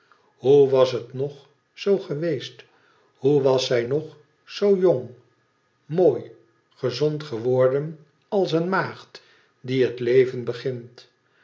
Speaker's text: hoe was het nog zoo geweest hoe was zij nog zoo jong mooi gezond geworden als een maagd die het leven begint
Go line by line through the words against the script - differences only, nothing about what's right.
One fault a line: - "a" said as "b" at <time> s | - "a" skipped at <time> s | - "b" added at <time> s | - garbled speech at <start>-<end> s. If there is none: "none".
none